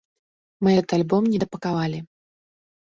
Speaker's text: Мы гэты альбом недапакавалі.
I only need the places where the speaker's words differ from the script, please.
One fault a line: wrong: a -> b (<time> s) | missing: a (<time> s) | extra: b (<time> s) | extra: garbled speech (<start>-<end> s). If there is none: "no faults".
no faults